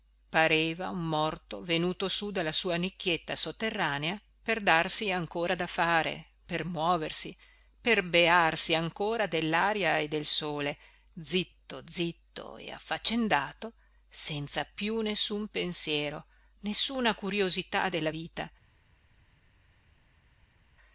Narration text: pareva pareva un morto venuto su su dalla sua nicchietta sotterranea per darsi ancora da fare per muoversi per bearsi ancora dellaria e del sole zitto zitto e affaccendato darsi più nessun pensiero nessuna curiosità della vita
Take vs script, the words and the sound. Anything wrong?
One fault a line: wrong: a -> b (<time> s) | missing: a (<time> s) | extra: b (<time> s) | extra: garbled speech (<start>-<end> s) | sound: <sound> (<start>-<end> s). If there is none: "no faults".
missing: pareva (0.9 s)
missing: su (2.3 s)
wrong: darsi -> senza (14.1 s)